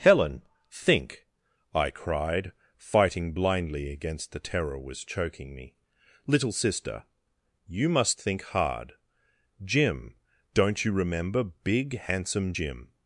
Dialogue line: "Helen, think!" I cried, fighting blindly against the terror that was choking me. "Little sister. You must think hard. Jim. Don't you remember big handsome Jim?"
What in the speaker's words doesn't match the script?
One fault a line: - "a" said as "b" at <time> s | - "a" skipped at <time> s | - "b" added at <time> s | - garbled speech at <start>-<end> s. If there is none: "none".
- "that" skipped at 4.8 s